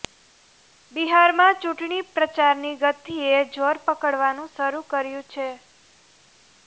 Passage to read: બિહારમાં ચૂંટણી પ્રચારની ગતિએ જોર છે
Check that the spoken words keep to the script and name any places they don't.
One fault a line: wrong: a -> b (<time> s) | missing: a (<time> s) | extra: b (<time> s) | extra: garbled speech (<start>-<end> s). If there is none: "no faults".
extra: પકડવાનું શરૂ કર્યું (3.9 s)